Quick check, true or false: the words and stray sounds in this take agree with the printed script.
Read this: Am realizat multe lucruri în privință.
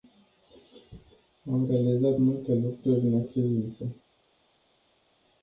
true